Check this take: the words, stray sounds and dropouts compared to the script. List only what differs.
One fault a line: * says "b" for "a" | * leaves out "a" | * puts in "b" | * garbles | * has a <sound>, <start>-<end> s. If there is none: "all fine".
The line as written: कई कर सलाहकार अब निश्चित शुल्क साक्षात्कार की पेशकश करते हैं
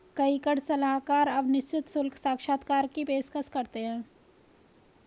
all fine